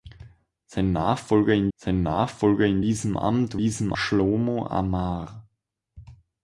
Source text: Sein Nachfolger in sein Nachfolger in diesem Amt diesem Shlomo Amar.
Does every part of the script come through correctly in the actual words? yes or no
yes